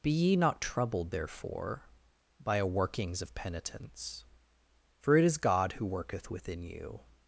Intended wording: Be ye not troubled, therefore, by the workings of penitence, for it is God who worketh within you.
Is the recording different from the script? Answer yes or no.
yes